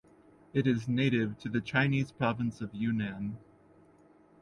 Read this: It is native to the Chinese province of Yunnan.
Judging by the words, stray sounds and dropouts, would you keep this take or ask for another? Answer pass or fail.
pass